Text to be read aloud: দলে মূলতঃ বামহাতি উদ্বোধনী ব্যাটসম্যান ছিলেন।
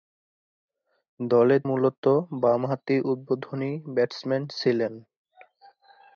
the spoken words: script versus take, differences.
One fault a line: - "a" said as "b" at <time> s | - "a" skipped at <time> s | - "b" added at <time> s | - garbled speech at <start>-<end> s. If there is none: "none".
none